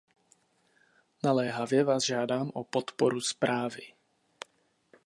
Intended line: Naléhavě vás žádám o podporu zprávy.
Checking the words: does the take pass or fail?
pass